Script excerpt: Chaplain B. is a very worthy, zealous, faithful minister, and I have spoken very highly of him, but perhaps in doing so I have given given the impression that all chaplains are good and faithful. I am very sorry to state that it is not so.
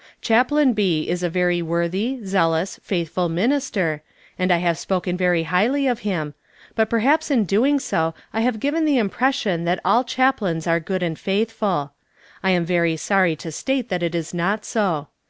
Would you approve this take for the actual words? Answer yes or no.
no